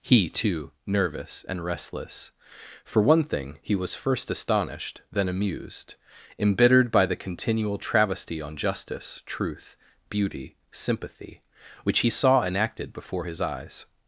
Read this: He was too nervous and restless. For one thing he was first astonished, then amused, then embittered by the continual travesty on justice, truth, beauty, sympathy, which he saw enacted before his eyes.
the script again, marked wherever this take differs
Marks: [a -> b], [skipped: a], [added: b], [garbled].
He [skipped: was] too nervous and restless. For one thing he was first astonished, then amused, [skipped: then] embittered by the continual travesty on justice, truth, beauty, sympathy, which he saw enacted before his eyes.